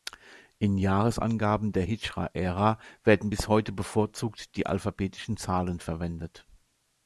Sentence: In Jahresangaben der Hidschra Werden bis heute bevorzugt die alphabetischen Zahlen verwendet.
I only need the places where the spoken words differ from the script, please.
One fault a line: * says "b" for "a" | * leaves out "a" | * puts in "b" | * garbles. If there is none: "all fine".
* puts in "Ära"